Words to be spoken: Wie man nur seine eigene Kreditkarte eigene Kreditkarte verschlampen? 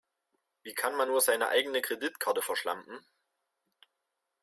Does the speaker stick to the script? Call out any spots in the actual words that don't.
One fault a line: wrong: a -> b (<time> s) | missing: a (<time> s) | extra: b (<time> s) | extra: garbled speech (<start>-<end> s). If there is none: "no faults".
extra: kann (0.7 s)
missing: eigene Kreditkarte (2.4 s)